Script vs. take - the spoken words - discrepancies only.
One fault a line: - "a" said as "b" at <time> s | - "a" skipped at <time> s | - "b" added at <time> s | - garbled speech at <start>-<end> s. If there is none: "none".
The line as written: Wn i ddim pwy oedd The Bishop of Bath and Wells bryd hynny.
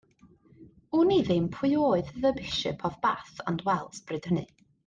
none